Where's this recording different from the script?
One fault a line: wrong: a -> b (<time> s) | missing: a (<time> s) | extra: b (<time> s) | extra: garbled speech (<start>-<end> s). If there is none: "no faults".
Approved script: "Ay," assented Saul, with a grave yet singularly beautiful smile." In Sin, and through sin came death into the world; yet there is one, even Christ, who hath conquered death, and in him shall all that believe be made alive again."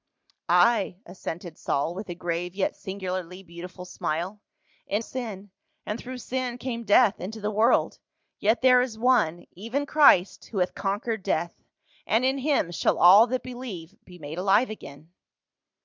no faults